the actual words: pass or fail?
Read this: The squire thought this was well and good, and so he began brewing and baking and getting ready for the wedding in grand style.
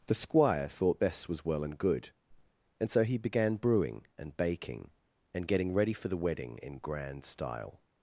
pass